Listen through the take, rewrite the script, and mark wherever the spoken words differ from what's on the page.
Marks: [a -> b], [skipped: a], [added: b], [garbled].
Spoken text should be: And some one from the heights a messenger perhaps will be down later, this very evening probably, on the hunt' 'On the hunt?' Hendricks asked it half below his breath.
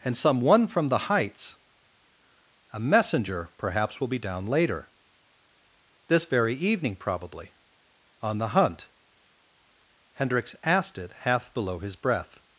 And some one from the heights a messenger perhaps will be down later, this very evening probably, on the hunt' [skipped: 'On the hunt?'] Hendricks asked it half below his breath.